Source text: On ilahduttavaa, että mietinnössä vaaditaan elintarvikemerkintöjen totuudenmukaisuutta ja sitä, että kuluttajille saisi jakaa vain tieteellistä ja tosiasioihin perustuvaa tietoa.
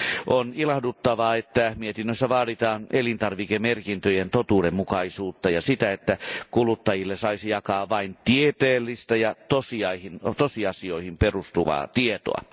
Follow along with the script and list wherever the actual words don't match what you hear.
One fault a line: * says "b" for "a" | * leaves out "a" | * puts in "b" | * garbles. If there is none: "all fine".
all fine